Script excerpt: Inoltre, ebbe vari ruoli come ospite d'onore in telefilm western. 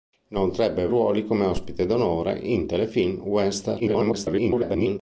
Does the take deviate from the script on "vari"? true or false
true